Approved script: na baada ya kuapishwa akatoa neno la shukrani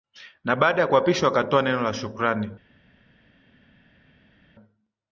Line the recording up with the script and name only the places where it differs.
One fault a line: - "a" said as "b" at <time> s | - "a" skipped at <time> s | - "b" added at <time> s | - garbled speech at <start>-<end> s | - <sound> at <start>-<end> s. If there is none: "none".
none